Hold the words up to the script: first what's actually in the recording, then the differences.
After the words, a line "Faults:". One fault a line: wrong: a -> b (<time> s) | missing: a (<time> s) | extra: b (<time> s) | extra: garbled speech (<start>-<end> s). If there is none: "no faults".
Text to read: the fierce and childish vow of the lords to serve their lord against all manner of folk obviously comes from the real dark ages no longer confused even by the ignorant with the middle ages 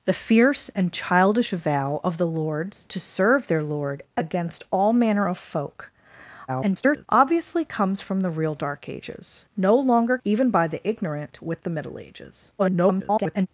the fierce and childish vow of the lords to serve their lord against all manner of folk [garbled] obviously comes from the real dark ages no longer even by the ignorant with the middle ages [garbled]
Faults:
extra: garbled speech (6.5-7.1 s)
missing: confused (10.2 s)
extra: garbled speech (12.6-13.5 s)